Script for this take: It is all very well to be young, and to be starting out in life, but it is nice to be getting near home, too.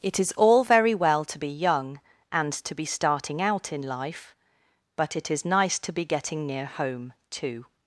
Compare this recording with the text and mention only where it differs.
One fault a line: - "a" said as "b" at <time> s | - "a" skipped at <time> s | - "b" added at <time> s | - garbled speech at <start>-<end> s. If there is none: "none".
none